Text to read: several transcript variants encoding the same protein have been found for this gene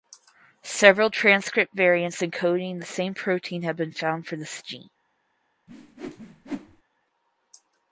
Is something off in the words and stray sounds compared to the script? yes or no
yes